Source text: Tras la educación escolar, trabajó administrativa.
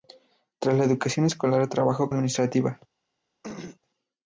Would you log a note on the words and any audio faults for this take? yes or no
yes